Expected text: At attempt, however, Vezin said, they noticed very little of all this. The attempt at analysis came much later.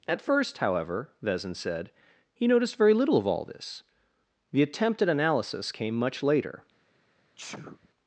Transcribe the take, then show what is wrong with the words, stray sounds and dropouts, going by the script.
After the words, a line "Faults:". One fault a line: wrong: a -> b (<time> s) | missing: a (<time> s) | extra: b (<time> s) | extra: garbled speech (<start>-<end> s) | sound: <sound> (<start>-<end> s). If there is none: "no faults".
At first, however, Vezin said, he noticed very little of all this. The attempt at analysis came much later.
Faults:
wrong: attempt -> first (0.2 s)
wrong: they -> he (2.3 s)
sound: sneeze (7.4-7.9 s)